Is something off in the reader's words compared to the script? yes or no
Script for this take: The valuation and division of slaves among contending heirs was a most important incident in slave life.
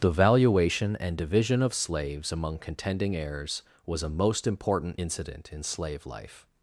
no